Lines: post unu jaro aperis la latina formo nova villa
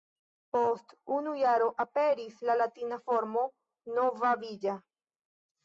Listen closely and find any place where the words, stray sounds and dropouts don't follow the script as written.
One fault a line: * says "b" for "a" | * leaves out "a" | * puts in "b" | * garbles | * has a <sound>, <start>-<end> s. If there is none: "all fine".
all fine